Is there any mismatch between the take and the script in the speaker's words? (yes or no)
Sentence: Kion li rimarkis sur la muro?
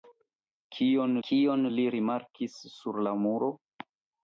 yes